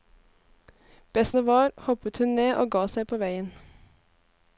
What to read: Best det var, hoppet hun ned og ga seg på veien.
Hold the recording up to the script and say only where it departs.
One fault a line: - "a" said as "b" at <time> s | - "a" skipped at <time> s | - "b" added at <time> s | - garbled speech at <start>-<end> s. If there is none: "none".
none